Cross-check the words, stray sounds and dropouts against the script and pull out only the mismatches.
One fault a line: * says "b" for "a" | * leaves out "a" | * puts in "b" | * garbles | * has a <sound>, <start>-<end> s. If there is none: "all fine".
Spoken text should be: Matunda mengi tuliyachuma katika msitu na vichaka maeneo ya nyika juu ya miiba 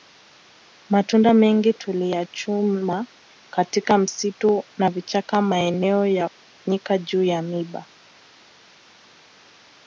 all fine